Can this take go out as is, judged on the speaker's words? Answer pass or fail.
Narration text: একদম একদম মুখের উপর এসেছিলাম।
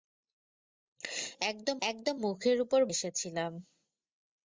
pass